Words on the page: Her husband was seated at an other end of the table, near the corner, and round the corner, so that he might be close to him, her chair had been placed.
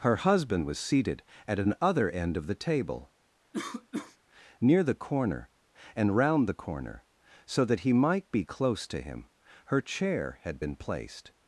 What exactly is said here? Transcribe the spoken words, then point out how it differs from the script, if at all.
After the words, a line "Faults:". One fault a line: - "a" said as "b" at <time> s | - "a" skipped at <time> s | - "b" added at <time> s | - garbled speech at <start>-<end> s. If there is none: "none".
Her husband was seated at an other end of the table, near the corner, and round the corner, so that he might be close to him, her chair had been placed.
Faults:
none